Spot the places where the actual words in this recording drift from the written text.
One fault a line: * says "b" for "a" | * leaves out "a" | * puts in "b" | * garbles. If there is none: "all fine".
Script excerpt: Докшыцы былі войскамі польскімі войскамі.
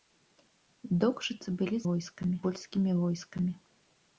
all fine